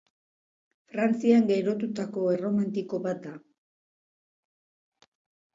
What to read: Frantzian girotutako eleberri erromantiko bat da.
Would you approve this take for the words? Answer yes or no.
no